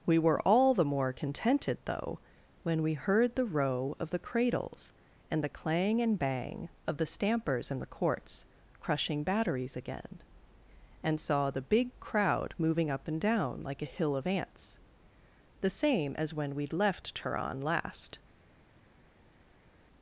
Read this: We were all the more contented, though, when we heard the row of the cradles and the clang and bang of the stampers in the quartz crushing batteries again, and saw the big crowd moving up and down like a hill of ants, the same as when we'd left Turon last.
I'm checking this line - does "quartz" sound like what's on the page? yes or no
no